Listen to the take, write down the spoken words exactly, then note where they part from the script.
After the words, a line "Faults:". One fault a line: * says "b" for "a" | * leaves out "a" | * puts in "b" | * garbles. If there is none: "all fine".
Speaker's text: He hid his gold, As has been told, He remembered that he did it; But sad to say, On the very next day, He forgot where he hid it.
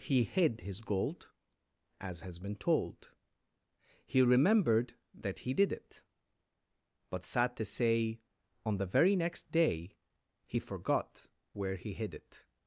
He hid his gold, As has been told, He remembered that he did it; But sad to say, On the very next day, He forgot where he hid it.
Faults:
all fine